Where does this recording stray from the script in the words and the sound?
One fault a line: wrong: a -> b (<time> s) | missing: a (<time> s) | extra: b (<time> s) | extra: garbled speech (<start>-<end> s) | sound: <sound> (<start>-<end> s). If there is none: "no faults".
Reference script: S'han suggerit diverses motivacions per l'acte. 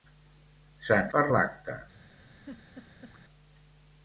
missing: suggerit diverses motivacions (1.1 s)
sound: laugh (2.3-3.2 s)